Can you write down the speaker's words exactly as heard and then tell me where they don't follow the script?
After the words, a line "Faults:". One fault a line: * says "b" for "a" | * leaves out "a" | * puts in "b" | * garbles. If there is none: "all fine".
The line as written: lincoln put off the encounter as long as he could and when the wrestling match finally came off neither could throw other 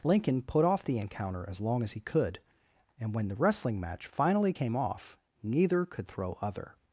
lincoln put off the encounter as long as he could and when the wrestling match finally came off neither could throw other
Faults:
all fine